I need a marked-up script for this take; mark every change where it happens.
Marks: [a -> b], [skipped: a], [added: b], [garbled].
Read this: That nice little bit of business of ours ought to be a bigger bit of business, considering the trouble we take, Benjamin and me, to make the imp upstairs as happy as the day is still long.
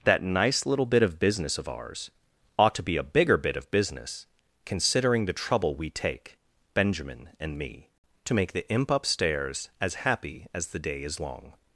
That nice little bit of business of ours ought to be a bigger bit of business, considering the trouble we take, Benjamin and me, to make the imp upstairs as happy as the day is [skipped: still] long.